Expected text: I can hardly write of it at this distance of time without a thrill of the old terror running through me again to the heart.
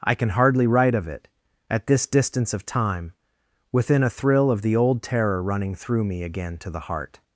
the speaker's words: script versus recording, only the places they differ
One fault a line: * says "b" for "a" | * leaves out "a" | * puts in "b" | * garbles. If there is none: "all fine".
* says "within" for "without"